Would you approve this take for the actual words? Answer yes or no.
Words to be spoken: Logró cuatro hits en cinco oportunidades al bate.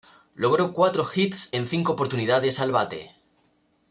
yes